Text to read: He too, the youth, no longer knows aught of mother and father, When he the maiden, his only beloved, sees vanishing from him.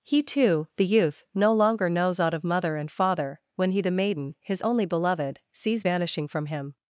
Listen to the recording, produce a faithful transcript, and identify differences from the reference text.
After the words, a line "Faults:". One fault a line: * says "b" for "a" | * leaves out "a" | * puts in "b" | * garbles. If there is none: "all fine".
He too, the youth, no longer knows aught of mother and father, When he the maiden, his only beloved, sees vanishing from him.
Faults:
all fine